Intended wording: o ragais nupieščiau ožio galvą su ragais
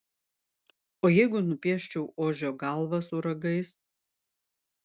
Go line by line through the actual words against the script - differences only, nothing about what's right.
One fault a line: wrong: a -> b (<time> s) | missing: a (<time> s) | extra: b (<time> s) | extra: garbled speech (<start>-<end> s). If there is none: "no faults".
wrong: ragais -> jeigu (1.1 s)